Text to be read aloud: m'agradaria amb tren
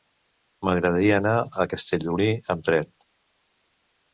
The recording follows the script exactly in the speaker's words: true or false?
false